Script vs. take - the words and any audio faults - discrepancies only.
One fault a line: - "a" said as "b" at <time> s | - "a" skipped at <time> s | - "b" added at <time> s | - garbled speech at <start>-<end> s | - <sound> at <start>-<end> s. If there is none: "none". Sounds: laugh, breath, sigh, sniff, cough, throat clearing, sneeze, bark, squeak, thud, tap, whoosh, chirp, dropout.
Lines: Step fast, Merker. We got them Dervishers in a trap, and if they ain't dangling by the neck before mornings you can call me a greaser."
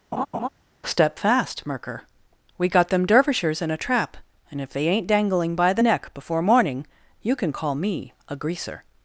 - laugh at 0.1-0.5 s
- "mornings" said as "morning" at 6.4 s